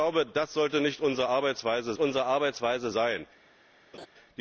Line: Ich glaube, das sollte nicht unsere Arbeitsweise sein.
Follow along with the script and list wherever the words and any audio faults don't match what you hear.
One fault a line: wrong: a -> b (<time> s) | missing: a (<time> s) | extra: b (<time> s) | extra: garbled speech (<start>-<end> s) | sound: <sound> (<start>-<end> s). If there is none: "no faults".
extra: unsere Arbeitsweise (2.0 s)
sound: laugh (3.9-4.1 s)